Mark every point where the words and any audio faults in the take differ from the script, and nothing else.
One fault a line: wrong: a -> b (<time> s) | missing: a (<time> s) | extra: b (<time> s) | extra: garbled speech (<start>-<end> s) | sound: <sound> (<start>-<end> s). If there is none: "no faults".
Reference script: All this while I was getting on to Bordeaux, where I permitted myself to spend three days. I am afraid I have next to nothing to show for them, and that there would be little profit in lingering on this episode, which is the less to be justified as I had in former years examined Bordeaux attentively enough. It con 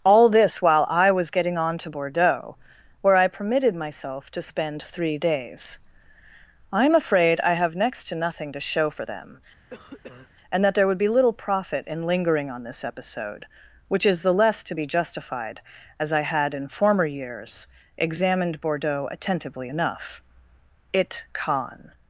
sound: cough (9.7-10.3 s)